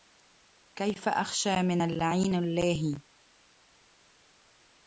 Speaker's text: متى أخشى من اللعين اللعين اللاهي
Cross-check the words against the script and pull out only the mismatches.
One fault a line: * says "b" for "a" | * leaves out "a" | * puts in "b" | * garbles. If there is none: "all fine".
* says "كيف" for "متى"
* leaves out "اللعين"